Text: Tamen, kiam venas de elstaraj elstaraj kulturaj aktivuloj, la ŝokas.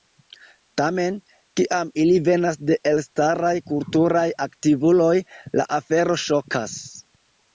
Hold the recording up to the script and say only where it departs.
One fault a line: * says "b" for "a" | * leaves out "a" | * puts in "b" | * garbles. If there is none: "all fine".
* puts in "ili"
* leaves out "elstaraj"
* puts in "afero"